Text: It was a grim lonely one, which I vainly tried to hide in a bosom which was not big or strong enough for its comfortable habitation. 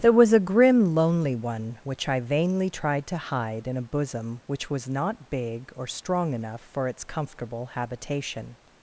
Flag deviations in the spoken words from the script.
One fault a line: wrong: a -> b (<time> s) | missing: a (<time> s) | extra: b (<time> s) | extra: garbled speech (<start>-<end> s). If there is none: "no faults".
wrong: It -> There (0.0 s)